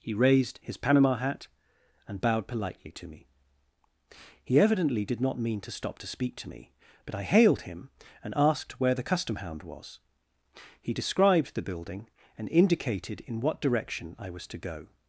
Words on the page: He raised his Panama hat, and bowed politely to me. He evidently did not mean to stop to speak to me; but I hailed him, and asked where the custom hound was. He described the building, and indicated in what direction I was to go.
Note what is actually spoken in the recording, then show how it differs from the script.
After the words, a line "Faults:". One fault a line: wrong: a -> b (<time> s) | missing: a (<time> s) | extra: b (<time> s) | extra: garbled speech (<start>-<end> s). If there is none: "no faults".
He raised his Panama hat, and bowed politely to me. He evidently did not mean to stop to speak to me; but I hailed him, and asked where the custom hound was. He described the building, and indicated in what direction I was to go.
Faults:
no faults